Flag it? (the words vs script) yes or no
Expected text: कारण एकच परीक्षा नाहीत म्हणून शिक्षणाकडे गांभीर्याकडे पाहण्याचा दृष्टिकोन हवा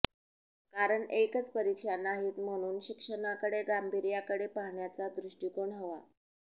no